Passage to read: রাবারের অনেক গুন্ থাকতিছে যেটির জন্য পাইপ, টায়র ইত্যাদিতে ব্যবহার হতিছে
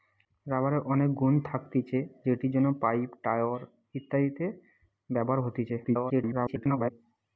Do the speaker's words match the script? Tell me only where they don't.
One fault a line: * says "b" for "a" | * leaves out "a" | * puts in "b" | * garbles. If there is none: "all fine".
* garbles